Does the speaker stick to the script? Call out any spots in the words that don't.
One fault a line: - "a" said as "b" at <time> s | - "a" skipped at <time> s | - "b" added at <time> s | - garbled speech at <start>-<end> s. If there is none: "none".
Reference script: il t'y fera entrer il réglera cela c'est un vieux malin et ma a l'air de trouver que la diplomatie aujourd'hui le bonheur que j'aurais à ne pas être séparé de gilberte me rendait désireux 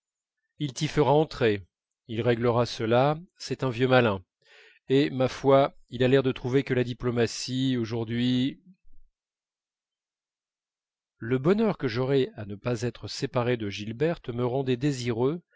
- "foi il" added at 5.3 s